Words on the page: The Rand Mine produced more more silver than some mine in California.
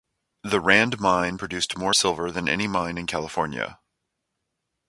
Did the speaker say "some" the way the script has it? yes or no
no